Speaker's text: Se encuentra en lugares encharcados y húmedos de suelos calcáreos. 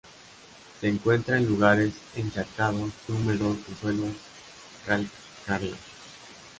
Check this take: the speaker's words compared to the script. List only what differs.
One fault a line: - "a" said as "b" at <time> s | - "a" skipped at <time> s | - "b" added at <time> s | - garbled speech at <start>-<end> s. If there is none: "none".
none